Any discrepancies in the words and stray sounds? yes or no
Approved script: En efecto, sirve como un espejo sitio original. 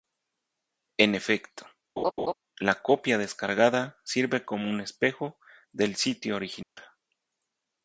yes